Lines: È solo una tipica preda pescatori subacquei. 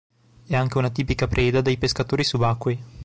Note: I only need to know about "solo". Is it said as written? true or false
false